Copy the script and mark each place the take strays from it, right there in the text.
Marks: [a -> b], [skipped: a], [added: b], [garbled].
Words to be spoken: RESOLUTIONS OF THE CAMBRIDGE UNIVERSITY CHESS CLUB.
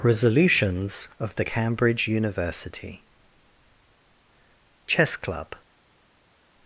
RESOLUTIONS OF THE CAMBRIDGE UNIVERSITY CHESS CLUB.